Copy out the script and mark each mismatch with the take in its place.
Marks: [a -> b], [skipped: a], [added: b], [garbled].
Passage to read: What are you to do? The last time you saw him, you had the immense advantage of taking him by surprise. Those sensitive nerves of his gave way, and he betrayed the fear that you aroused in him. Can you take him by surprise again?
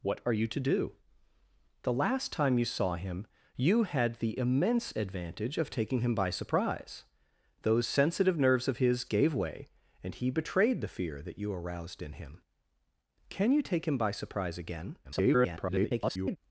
What are you to do? The last time you saw him, you had the immense advantage of taking him by surprise. Those sensitive nerves of his gave way, and he betrayed the fear that you aroused in him. Can you take him by surprise again? [garbled]